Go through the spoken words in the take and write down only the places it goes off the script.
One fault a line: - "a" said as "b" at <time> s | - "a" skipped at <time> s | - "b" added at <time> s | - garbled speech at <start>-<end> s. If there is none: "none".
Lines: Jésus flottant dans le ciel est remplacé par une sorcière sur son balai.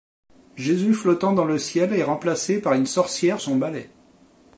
- "sur" skipped at 3.4 s